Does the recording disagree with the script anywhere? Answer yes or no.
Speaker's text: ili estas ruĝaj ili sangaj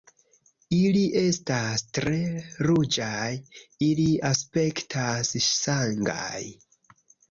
yes